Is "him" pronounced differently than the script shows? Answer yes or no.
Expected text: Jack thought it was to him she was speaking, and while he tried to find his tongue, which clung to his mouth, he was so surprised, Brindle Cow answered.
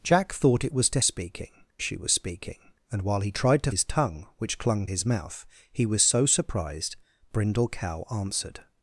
yes